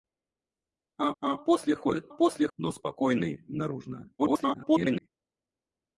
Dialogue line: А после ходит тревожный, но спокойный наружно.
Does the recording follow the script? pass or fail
fail